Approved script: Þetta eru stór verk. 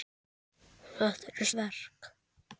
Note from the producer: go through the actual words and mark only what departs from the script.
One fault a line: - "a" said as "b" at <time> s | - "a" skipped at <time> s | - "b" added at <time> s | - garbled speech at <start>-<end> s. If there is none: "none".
- "stór" skipped at 1.5 s